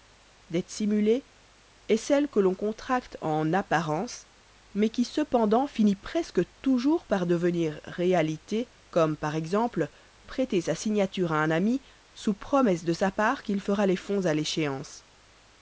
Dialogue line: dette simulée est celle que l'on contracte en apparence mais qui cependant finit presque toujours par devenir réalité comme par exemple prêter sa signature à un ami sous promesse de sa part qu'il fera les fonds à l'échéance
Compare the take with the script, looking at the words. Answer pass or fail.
pass